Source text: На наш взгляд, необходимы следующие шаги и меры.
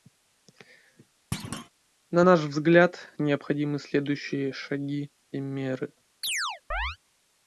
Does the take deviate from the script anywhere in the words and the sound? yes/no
yes